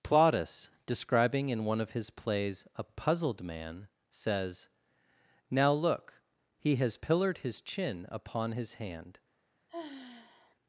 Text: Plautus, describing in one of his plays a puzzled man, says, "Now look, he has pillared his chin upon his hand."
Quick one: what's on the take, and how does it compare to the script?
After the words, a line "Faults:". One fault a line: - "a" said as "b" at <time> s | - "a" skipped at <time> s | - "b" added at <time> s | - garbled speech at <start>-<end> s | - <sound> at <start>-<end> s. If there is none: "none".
Plautus, describing in one of his plays a puzzled man, says, "Now look, he has pillared his chin upon his hand."
Faults:
- sigh at 9.7-10.6 s